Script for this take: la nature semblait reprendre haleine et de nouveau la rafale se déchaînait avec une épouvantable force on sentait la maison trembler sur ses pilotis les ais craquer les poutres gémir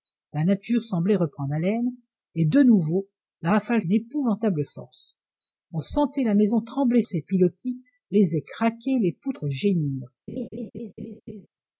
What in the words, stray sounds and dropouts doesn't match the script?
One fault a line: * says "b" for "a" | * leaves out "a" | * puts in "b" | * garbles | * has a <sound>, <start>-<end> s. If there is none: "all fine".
* leaves out "se déchaînait avec"
* leaves out "sur"
* has a laugh, 10.3-11.5 s